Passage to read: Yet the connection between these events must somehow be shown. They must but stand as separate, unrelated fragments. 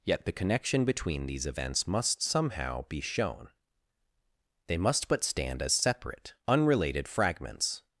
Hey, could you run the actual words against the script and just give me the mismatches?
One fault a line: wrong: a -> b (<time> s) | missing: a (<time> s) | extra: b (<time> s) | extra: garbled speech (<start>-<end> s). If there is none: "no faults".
no faults